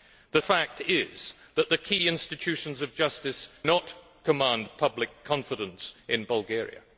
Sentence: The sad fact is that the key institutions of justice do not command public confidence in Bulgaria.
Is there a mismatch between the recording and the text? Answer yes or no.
yes